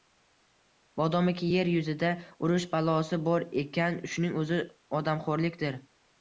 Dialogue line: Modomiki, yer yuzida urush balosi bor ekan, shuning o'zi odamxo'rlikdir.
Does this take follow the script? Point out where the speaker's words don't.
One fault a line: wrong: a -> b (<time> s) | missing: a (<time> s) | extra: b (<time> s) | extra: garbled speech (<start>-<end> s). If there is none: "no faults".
no faults